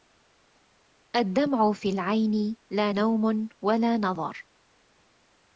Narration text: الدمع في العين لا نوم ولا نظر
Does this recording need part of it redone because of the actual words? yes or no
no